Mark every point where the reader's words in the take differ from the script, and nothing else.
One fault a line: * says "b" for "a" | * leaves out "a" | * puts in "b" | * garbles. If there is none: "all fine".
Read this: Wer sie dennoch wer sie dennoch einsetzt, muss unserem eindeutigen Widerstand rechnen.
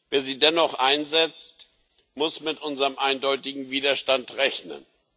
* leaves out "wer sie dennoch"
* puts in "mit"